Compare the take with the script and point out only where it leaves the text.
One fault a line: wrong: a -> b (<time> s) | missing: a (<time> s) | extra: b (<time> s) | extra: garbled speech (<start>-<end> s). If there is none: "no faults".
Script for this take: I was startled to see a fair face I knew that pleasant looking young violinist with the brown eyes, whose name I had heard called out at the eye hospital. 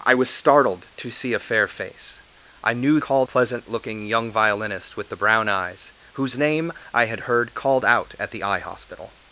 wrong: that -> called (3.0 s)